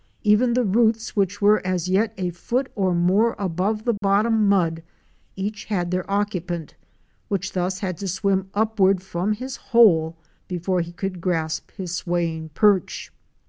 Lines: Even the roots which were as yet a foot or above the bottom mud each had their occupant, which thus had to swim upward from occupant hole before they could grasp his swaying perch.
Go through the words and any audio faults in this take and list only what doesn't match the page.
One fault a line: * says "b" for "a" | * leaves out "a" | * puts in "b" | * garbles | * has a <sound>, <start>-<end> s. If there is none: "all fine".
* puts in "more"
* has a dropout, 4.0-4.0 s
* says "his" for "occupant"
* says "he" for "they"